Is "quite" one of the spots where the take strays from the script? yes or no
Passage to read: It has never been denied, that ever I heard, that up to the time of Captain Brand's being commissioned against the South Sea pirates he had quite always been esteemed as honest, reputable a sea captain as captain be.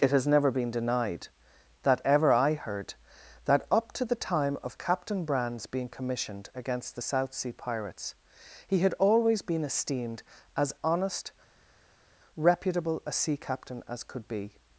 yes